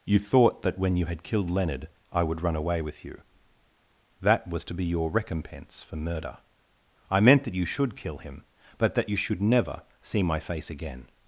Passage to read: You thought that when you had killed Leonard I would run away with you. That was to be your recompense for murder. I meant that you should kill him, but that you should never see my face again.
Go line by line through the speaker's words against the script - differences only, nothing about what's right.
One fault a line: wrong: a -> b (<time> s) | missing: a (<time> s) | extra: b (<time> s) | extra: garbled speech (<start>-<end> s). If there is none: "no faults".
no faults